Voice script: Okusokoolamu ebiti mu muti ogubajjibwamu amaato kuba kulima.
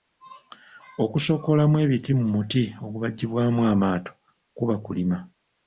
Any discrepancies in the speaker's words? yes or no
no